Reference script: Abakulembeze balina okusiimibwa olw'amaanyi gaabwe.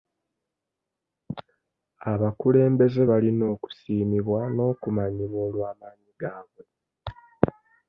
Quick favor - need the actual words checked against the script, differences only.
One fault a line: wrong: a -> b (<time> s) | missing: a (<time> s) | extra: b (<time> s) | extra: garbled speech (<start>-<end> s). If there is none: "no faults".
extra: n'okumanyibwa (4.5 s)